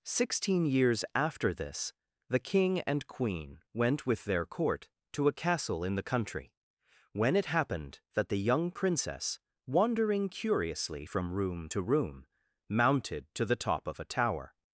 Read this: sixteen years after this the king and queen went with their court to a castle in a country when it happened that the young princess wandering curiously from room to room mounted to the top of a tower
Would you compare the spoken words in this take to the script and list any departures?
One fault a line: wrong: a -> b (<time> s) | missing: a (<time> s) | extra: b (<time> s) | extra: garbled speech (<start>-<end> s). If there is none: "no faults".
wrong: a -> the (5.9 s)